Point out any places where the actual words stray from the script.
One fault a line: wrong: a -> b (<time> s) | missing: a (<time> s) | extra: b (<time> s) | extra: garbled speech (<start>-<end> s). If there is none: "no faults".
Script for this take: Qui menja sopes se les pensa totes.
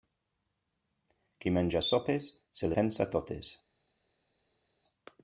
missing: les (2.7 s)